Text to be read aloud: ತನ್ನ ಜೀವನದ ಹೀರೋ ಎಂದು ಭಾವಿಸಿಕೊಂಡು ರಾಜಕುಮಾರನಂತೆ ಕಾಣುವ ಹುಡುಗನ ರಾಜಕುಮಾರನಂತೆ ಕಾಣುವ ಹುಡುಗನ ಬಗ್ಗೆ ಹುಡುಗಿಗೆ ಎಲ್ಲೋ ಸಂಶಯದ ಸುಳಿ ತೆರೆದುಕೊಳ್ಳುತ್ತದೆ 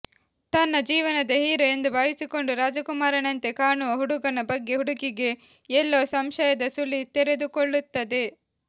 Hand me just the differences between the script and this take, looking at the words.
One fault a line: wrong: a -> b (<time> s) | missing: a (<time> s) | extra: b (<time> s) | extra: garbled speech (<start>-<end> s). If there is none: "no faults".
missing: ರಾಜಕುಮಾರನಂತೆ ಕಾಣುವ ಹುಡುಗನ (4.4 s)